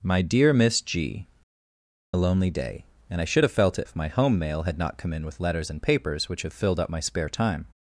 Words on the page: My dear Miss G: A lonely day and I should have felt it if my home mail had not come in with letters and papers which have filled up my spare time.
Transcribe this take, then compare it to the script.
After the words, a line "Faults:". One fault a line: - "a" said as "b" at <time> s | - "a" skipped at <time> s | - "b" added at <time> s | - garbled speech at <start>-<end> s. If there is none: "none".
My dear Miss G: A lonely day and I should have felt it if my home mail had not come in with letters and papers which have filled up my spare time.
Faults:
none